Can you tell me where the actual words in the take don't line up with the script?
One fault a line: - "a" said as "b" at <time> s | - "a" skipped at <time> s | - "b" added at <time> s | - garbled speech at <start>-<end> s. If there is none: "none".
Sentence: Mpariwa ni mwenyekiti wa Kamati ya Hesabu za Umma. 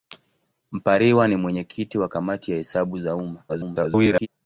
- garbled speech at 3.5-4.3 s